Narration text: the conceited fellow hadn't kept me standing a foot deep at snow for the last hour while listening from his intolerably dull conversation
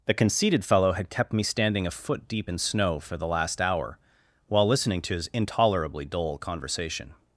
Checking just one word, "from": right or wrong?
wrong